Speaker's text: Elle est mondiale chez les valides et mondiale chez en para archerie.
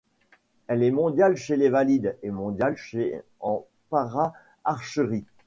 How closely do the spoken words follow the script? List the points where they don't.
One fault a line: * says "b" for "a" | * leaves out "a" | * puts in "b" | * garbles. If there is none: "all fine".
all fine